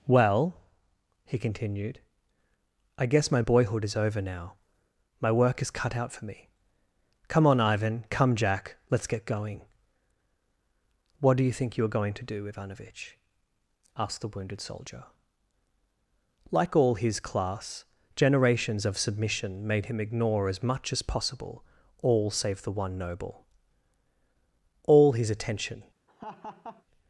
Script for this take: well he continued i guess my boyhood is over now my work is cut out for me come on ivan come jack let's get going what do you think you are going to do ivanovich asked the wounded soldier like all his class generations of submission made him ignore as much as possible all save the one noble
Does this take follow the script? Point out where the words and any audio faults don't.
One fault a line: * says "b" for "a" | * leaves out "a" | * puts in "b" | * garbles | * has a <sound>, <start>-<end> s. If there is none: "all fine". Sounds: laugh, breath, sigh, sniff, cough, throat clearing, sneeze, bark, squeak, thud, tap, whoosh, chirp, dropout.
* puts in "all his attention"
* has a laugh, 26.1-26.8 s